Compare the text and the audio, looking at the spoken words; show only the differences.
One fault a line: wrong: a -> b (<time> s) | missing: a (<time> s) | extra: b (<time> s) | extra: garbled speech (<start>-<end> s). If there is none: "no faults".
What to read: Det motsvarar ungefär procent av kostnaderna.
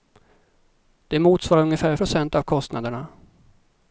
no faults